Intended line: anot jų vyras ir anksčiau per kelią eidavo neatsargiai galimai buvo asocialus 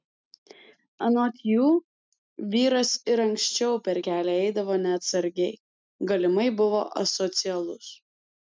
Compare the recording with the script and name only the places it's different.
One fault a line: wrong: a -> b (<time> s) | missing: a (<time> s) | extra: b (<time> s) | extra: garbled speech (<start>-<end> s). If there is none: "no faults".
no faults